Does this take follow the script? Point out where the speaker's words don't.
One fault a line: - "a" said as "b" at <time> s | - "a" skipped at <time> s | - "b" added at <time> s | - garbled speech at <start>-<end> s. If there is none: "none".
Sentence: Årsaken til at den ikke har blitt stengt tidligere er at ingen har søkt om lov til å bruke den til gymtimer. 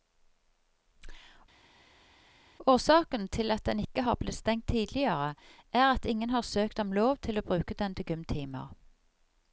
none